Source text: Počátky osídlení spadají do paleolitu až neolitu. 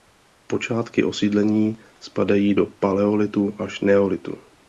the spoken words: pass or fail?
pass